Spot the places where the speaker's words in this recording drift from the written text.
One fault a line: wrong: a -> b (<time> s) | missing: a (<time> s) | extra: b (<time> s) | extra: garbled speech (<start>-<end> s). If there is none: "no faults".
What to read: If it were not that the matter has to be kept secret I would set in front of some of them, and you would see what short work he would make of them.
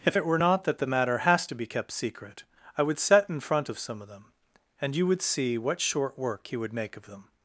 no faults